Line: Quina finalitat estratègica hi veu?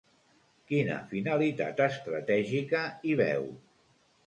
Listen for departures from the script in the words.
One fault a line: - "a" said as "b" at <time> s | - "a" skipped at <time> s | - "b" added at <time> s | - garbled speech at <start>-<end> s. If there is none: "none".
none